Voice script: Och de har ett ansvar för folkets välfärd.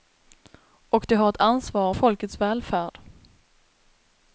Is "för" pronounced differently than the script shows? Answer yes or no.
yes